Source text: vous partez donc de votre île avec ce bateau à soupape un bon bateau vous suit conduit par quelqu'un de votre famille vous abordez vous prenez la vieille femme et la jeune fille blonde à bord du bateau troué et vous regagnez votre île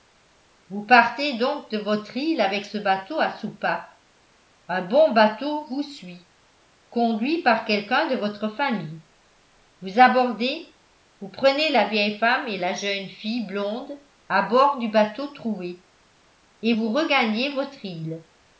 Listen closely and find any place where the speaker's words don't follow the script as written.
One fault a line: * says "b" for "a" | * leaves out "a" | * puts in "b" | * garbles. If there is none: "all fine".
all fine